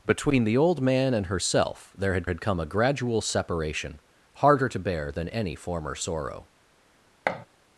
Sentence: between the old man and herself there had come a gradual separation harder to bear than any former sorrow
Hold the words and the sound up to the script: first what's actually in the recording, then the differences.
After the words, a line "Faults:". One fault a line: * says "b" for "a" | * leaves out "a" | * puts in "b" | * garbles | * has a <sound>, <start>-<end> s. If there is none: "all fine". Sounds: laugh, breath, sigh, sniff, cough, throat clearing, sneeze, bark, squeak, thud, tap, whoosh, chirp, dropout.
between the old man and herself there had had come a gradual separation harder to bear than any former sorrow
Faults:
* puts in "had"
* has a thud, 7.3-7.5 s